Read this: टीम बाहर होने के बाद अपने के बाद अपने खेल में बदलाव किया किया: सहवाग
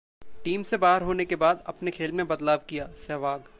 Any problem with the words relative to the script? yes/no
yes